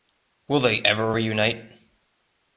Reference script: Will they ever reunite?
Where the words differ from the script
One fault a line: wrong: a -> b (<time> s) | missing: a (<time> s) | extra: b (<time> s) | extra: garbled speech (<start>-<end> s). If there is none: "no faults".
no faults